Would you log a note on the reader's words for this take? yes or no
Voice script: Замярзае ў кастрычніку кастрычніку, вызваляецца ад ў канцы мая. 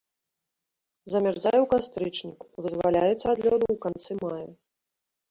yes